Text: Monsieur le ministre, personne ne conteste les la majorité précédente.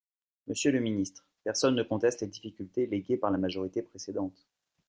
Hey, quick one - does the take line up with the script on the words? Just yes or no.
no